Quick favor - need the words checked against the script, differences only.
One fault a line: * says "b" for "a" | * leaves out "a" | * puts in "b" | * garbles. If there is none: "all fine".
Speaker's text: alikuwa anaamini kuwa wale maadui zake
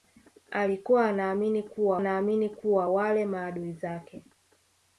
* puts in "anaamini kuwa"